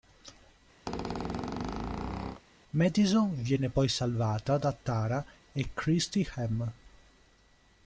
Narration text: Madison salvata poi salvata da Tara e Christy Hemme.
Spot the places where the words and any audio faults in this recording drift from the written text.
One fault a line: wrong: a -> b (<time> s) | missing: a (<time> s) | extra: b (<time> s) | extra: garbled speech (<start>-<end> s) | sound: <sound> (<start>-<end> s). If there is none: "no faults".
sound: squeak (0.9-2.4 s)
wrong: salvata -> viene (3.4 s)